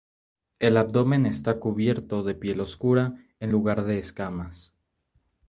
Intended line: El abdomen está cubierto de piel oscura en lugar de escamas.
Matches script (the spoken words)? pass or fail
pass